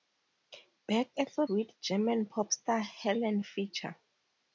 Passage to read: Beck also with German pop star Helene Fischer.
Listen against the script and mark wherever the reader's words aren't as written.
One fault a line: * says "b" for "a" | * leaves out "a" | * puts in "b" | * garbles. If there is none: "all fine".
all fine